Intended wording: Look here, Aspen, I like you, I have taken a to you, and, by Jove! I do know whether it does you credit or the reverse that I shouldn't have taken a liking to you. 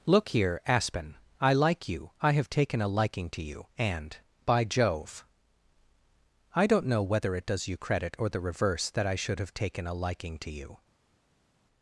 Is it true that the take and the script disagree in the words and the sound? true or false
true